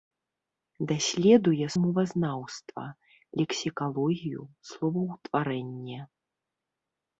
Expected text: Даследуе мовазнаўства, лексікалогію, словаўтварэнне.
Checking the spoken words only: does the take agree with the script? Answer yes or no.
yes